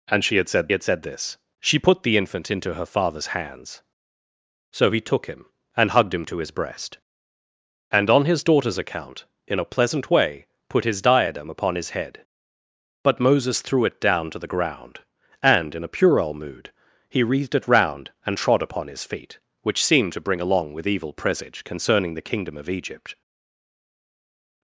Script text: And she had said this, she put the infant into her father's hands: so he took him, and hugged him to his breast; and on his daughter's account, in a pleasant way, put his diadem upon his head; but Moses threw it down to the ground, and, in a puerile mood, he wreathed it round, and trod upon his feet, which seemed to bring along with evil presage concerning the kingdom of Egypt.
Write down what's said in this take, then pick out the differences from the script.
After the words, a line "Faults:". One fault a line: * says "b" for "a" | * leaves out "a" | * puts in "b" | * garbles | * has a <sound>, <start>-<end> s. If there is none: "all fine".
And she had said had said this, she put the infant into her father's hands: so he took him, and hugged him to his breast; and on his daughter's account, in a pleasant way, put his diadem upon his head; but Moses threw it down to the ground, and, in a puerile mood, he wreathed it round, and trod upon his feet, which seemed to bring along with evil presage concerning the kingdom of Egypt.
Faults:
* puts in "had said"